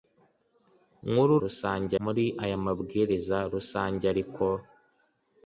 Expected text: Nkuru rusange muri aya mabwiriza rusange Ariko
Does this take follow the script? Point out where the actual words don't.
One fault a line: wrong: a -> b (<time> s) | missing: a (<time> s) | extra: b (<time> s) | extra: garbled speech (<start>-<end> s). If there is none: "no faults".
no faults